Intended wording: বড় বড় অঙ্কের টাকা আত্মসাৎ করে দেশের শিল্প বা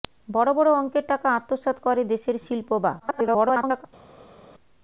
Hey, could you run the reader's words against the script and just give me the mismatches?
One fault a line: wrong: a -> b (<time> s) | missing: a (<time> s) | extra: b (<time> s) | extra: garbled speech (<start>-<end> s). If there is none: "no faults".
extra: garbled speech (3.0-3.9 s)